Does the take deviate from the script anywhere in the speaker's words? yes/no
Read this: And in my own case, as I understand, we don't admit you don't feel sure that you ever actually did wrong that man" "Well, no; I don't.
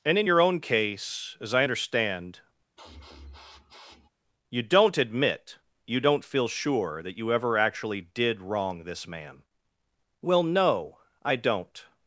yes